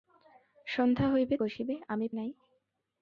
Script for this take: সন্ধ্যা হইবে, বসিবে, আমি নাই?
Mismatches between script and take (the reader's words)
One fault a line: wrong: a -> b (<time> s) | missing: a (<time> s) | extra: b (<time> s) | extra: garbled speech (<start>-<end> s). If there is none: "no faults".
no faults